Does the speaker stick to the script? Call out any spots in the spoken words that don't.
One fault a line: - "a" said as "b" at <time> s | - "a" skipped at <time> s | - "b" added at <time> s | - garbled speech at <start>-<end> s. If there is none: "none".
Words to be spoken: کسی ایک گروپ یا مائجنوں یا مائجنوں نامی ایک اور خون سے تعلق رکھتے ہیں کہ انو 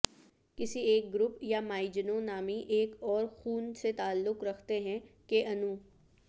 - "یا مائجنوں" skipped at 2.2 s